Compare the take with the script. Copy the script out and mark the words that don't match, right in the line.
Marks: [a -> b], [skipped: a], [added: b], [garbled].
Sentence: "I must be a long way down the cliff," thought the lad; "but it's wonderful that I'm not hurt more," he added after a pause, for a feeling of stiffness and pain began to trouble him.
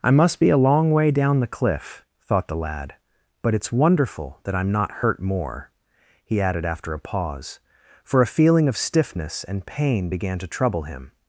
"I must be a long way down the cliff," thought the lad; "but it's wonderful that I'm not hurt more," he added after a pause, for a feeling of stiffness and pain began to trouble him.